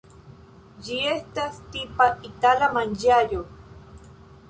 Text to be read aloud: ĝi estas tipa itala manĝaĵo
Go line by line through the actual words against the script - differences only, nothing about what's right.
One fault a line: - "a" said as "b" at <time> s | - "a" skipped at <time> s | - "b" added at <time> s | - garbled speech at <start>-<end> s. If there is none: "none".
none